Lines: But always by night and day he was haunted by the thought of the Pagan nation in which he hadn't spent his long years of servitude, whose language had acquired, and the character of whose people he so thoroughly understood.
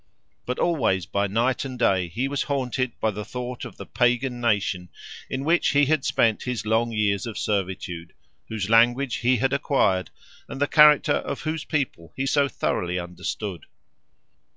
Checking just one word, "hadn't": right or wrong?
wrong